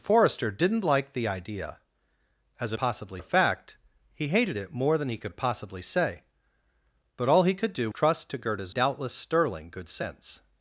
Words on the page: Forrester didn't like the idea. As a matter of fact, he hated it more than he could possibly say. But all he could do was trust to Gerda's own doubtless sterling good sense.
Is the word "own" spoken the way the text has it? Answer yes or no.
no